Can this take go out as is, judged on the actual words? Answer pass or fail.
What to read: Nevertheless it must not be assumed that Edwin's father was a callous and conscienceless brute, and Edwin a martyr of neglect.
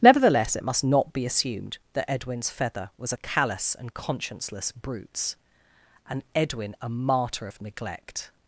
fail